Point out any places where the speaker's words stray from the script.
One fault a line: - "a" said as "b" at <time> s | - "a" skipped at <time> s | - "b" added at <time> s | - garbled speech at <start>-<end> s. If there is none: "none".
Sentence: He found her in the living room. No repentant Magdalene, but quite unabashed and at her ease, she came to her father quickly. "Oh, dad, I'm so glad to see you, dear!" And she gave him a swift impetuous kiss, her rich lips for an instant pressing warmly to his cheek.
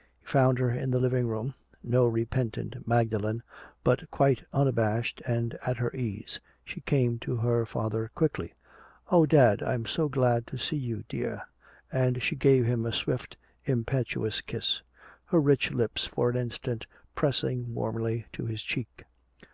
none